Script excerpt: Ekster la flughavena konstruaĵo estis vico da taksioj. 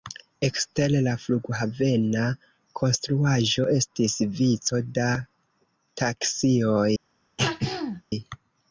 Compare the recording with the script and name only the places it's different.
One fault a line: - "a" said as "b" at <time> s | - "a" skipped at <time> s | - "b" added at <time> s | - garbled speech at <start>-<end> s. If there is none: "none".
none